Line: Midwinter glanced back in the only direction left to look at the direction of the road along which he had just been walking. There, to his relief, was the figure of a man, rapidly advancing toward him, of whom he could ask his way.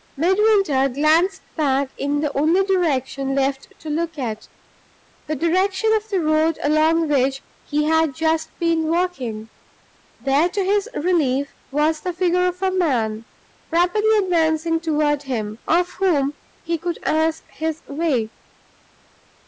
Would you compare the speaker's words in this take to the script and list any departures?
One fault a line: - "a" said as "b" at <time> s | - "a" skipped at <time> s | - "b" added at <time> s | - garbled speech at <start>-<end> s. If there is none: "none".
none